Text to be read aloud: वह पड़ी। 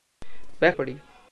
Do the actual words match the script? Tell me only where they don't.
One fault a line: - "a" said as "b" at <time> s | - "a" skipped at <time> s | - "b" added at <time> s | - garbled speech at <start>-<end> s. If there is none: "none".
none